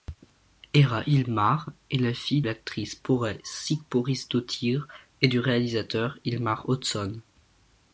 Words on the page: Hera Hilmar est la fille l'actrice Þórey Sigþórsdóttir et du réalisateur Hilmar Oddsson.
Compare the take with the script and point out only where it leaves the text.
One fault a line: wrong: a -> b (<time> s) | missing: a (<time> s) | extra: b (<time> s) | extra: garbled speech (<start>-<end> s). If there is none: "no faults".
no faults